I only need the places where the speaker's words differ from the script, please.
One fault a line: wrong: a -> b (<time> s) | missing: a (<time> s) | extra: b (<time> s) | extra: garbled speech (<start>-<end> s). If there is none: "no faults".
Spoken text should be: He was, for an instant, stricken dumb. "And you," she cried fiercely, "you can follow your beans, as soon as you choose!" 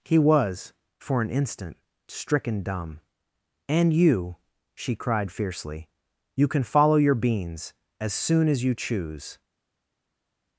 no faults